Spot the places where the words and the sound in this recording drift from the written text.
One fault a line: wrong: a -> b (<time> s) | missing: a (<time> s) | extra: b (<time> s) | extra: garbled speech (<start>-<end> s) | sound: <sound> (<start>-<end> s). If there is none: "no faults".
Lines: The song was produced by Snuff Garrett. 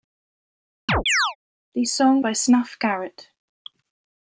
sound: chirp (0.9-1.4 s)
missing: was produced (2.2 s)